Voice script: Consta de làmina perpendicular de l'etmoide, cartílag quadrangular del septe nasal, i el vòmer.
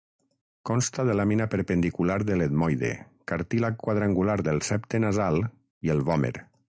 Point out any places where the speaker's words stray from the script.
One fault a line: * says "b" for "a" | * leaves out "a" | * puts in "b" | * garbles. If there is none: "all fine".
all fine